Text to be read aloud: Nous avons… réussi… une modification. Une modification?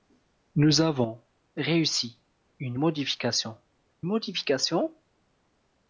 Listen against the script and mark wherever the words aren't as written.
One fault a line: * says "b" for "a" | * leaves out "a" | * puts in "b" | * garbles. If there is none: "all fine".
* leaves out "Une"